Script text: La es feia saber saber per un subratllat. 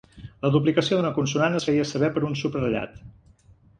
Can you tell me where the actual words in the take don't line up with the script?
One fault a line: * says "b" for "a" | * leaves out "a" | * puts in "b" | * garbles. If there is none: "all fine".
* puts in "duplicació d'una consonant"
* leaves out "saber"